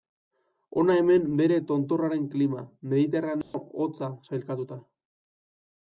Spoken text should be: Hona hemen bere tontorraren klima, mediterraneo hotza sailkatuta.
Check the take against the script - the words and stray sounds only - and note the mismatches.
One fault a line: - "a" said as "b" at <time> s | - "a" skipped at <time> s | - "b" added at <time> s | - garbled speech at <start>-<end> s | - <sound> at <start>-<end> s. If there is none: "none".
- dropout at 3.4-3.5 s